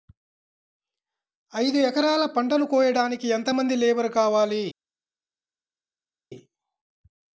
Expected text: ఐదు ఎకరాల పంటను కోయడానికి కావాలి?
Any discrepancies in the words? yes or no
yes